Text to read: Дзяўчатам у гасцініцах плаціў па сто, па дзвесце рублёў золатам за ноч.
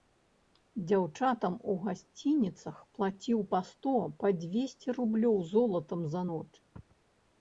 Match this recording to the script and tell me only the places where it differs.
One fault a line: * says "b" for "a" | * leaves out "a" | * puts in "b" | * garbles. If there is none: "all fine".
all fine